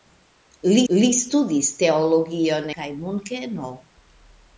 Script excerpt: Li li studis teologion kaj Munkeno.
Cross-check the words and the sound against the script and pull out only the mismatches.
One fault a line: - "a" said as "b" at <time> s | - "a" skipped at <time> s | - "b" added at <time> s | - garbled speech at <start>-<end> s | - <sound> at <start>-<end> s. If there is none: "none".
none